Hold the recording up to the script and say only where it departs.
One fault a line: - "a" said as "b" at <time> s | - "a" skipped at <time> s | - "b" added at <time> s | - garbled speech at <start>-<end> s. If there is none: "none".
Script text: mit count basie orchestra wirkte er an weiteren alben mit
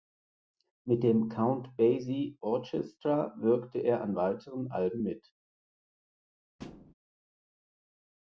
- "dem" added at 1.0 s